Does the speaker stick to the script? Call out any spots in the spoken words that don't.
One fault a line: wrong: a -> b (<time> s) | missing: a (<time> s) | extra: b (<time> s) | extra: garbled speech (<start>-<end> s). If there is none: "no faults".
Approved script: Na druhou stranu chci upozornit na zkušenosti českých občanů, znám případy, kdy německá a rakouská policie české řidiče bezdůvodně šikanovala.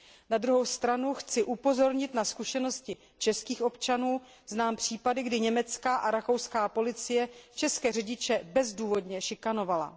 no faults